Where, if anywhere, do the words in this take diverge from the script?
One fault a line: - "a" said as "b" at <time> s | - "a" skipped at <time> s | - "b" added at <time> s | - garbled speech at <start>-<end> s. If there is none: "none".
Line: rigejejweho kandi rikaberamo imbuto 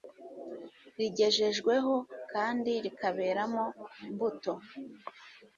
none